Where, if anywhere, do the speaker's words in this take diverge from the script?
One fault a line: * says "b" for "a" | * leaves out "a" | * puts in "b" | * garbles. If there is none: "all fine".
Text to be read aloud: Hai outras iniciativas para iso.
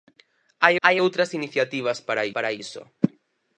* puts in "hai"
* puts in "para"